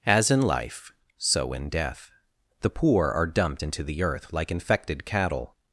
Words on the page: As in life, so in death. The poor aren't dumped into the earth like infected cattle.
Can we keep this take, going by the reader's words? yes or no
no